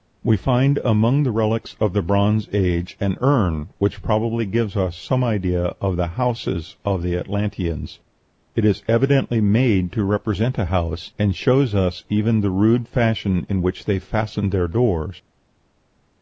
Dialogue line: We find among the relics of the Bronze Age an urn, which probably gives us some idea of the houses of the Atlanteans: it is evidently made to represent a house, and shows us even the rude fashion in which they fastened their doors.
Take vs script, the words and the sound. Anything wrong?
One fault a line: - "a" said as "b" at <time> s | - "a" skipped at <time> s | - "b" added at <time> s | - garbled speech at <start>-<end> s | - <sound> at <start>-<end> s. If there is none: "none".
none